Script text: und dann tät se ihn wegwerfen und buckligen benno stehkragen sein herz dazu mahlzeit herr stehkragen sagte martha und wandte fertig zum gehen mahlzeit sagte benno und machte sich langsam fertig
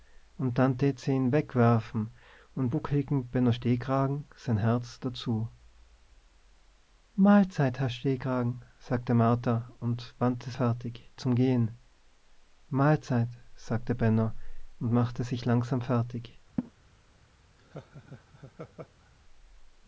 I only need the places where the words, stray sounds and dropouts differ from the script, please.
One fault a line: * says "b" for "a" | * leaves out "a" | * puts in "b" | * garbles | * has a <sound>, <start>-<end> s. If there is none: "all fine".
* has a laugh, 16.6-16.7 s
* has a laugh, 17.6-19.1 s